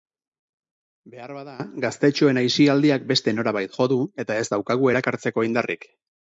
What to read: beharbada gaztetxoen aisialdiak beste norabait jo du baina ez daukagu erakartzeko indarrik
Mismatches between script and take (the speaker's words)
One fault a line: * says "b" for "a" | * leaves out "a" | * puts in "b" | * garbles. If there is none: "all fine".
* says "eta" for "baina"